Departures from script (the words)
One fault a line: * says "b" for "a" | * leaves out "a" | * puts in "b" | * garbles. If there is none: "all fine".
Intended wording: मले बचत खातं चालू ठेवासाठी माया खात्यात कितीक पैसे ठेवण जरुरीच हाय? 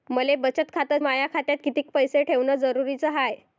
* leaves out "चालू ठेवासाठी"